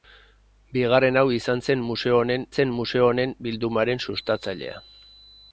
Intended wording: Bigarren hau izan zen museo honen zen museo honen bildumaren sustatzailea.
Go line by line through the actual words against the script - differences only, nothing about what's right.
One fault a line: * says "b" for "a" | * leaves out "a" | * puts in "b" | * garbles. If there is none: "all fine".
all fine